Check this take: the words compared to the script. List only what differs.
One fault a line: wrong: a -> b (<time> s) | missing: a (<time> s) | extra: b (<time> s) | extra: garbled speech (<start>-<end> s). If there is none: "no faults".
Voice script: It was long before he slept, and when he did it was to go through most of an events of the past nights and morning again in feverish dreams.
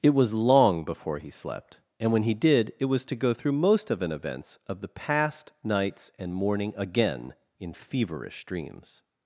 no faults